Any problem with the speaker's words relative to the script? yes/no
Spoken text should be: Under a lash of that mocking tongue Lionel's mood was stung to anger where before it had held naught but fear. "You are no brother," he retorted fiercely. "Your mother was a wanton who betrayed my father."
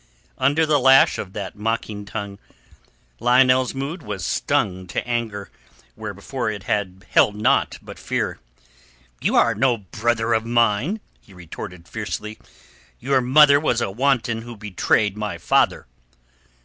yes